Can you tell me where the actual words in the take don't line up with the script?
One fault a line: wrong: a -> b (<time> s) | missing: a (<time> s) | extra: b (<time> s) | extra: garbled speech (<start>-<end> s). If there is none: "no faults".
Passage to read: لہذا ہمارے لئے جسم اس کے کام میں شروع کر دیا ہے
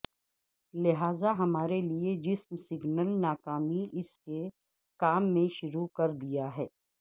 extra: سگنل ناکامی (2.6 s)